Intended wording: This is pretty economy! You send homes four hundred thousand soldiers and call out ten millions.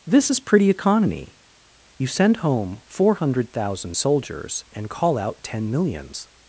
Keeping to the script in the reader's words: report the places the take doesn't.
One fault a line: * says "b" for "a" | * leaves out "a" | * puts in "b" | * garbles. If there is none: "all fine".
* says "home" for "homes"